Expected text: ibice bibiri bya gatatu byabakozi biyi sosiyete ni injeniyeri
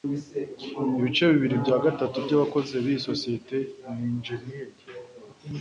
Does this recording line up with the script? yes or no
yes